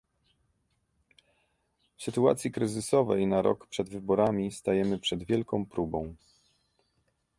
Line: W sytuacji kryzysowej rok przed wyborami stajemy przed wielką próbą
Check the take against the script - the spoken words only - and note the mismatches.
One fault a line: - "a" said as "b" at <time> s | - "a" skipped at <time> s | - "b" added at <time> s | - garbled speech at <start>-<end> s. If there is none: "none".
- "na" added at 3.3 s